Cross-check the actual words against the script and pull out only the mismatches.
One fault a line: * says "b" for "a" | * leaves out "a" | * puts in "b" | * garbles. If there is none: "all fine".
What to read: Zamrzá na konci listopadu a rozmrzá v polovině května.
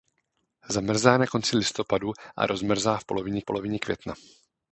* puts in "polovině"